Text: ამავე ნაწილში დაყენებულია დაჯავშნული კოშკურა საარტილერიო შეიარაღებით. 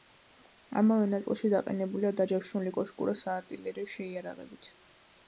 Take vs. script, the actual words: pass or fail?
pass